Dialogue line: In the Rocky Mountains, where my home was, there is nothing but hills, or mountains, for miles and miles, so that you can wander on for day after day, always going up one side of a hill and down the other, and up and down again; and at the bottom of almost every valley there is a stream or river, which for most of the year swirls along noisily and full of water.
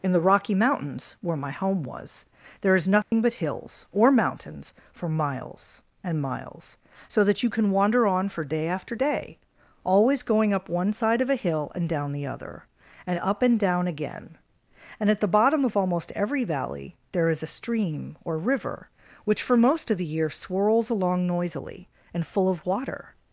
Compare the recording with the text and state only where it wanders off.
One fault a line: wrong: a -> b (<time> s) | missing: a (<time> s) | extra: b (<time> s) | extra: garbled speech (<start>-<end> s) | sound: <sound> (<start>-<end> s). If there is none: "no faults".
sound: dropout (3.0-3.1 s)